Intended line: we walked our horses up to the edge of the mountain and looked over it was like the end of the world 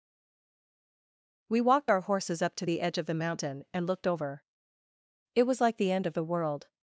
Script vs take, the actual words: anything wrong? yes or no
no